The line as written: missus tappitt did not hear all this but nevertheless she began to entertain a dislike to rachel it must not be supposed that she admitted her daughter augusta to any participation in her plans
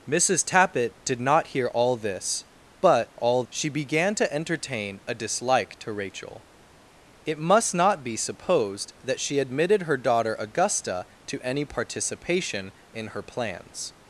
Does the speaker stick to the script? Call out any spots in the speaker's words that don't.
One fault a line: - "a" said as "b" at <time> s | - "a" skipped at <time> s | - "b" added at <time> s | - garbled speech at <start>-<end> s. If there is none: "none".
- "nevertheless" said as "all" at 3.1 s